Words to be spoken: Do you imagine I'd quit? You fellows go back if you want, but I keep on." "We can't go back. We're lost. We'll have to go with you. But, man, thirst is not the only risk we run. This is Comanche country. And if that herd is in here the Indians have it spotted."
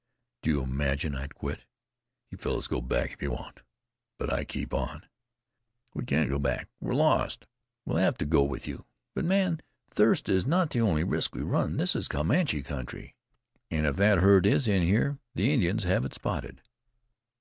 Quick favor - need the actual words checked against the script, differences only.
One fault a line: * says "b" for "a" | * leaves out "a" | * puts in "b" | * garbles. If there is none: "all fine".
all fine